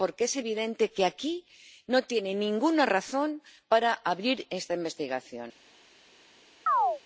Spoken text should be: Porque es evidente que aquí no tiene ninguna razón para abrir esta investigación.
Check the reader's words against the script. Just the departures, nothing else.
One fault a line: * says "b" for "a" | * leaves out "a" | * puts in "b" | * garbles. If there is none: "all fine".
all fine